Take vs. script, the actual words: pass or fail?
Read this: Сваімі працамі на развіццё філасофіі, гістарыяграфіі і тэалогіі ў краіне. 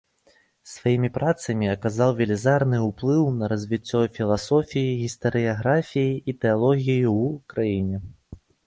fail